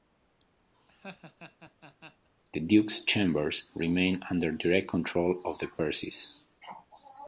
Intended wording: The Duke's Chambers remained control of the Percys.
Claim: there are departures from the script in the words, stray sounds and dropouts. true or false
true